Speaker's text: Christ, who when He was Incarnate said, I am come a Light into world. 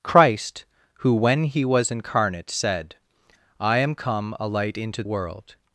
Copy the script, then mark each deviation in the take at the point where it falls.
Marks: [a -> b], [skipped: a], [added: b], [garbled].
Christ, who when He was Incarnate said, I am come a Light into world.